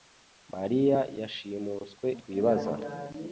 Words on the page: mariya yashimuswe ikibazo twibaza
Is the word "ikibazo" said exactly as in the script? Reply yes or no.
no